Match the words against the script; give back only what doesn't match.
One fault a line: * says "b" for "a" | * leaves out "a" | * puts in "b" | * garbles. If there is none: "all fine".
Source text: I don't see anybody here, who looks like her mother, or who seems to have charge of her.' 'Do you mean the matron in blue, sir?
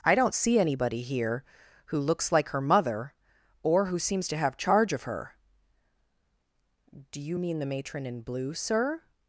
all fine